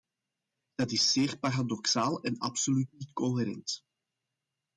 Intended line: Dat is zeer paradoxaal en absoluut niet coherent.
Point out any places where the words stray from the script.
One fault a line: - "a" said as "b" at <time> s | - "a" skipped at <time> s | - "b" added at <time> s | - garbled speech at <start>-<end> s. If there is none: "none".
none